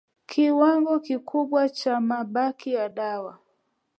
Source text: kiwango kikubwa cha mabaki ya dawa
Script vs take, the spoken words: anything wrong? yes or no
no